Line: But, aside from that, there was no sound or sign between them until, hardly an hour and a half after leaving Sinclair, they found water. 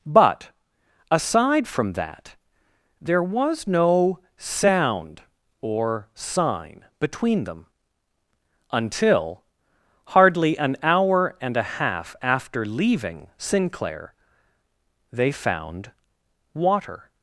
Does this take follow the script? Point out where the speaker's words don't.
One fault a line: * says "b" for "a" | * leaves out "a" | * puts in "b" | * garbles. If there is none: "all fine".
all fine